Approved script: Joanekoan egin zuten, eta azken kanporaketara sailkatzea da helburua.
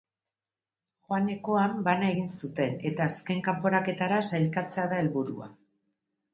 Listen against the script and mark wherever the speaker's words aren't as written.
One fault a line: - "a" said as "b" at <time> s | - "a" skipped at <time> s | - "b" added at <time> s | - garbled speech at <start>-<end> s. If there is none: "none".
- "bana" added at 1.9 s